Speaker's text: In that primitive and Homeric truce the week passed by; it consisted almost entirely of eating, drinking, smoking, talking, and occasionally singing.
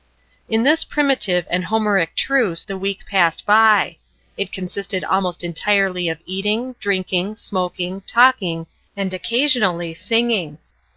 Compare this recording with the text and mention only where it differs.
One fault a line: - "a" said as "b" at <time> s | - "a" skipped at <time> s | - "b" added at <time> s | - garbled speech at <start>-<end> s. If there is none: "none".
- "that" said as "this" at 0.6 s